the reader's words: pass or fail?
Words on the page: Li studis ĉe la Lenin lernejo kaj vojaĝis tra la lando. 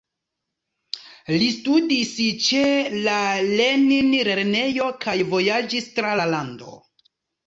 pass